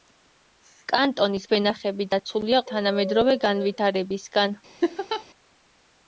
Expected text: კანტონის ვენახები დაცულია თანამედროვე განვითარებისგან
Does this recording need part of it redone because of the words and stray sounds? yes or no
yes